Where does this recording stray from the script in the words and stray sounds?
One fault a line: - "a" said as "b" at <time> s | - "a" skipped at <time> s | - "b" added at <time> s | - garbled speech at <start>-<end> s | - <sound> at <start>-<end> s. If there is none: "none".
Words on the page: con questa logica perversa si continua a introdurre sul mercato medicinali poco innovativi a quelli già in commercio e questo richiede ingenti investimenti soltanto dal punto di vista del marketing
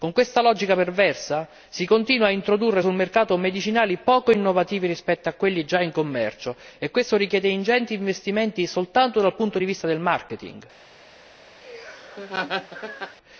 - "rispetto" added at 4.9 s
- laugh at 11.6-13.2 s